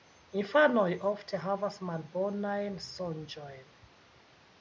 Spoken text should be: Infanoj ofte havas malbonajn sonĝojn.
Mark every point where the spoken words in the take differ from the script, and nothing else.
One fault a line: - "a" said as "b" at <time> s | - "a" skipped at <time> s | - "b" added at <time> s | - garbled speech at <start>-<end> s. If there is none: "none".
none